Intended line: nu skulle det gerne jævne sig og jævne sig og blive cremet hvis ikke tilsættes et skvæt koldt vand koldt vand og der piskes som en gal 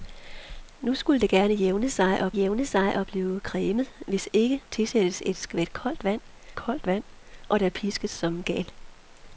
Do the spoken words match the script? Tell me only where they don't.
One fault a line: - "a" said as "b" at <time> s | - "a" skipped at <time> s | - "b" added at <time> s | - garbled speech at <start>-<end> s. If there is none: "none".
none